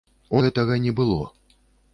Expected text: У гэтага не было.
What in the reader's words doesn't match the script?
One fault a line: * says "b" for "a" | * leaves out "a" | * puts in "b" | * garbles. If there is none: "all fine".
all fine